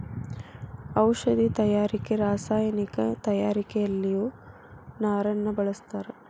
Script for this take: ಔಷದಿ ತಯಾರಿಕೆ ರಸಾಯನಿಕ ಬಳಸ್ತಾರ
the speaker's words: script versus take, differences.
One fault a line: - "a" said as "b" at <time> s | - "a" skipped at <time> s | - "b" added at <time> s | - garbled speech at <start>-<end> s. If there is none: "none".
- "ತಯಾರಿಕೆಯಲ್ಲಿಯು ನಾರನ್ನ" added at 3.3 s